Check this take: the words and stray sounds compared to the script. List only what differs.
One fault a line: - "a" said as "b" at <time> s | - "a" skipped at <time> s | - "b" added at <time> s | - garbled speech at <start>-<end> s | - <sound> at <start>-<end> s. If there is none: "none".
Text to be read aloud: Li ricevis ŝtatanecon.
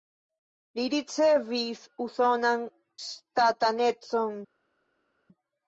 - "usonan" added at 2.1 s